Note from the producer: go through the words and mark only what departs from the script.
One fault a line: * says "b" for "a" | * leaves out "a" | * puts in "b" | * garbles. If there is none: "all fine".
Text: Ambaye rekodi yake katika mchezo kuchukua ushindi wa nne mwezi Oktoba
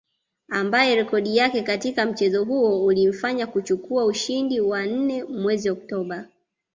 * puts in "huo ulimfanya"